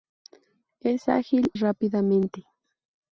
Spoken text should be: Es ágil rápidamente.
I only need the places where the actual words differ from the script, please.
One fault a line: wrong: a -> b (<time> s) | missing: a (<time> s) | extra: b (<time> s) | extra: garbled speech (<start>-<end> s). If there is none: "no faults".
no faults